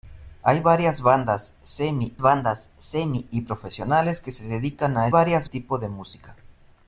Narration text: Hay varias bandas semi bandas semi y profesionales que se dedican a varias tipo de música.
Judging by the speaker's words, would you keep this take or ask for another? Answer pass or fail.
pass